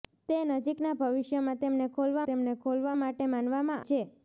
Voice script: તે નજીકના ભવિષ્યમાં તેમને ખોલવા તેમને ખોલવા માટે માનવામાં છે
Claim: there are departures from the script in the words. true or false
false